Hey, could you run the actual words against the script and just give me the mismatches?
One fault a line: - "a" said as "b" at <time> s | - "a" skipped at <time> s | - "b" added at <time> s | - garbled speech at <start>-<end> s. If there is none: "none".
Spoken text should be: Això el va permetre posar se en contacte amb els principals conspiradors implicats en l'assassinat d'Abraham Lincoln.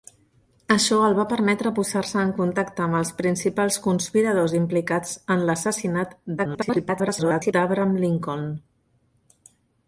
- garbled speech at 6.4-7.5 s